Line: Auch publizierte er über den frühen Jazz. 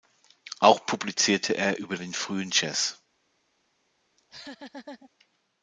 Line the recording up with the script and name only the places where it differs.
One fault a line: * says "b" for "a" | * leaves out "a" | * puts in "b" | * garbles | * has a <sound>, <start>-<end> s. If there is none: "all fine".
* has a laugh, 4.2-5.1 s